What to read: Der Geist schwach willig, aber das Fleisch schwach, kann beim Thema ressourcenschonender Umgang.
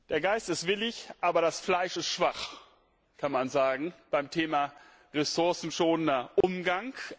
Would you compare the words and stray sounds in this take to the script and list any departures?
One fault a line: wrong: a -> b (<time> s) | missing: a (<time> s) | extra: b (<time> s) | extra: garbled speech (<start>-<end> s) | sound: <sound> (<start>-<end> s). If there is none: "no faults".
wrong: schwach -> ist (0.5 s)
extra: ist (2.0 s)
extra: man sagen (3.3 s)
sound: dropout (6.4-6.4 s)